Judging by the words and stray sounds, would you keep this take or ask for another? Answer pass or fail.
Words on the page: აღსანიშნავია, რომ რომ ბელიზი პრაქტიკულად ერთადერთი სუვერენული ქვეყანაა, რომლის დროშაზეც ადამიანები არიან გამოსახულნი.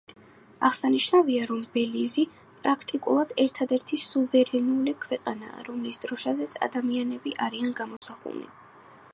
fail